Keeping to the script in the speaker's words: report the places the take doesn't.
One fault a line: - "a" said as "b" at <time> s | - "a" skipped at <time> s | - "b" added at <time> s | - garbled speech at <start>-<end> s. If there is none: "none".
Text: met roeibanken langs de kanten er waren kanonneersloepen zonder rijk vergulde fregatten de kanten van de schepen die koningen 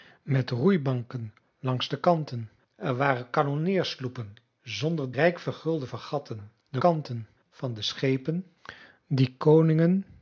none